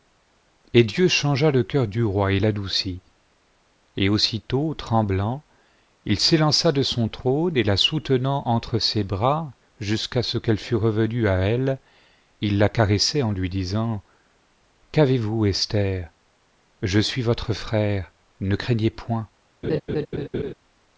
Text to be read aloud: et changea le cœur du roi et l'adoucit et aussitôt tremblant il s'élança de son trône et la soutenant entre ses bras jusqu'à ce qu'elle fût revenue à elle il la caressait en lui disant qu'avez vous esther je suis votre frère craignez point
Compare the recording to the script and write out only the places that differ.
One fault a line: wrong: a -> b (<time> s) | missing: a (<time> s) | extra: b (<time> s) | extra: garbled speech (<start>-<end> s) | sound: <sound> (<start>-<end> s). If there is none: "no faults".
extra: dieu (0.8 s)
extra: ne (18.4 s)
sound: laugh (19.6-20.5 s)